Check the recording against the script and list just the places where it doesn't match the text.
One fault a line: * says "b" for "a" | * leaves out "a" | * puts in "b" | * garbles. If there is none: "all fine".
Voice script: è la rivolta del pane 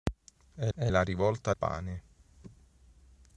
* puts in "è"
* leaves out "del"